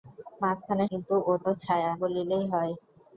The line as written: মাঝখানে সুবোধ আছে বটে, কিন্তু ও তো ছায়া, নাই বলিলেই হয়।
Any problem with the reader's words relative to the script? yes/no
yes